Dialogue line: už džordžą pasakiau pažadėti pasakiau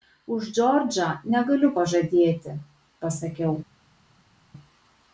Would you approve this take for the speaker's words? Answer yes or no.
no